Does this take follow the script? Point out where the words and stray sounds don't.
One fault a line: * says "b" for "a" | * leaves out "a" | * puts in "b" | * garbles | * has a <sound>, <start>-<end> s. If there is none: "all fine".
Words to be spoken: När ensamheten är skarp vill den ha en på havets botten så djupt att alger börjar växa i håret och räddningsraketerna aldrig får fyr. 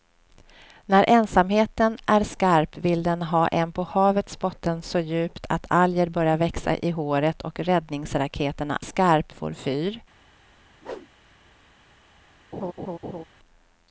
* says "skarp" for "aldrig"
* has a whoosh, 10.8-11.1 s
* has a laugh, 12.5-13.2 s